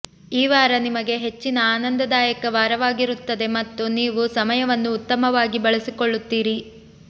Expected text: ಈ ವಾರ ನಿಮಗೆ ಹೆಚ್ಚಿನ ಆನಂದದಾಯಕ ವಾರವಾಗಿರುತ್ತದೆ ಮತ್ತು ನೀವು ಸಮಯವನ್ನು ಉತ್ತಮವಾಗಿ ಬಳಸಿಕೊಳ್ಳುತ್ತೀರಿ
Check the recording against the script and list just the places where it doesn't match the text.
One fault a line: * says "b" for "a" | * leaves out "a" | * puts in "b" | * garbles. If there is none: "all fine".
all fine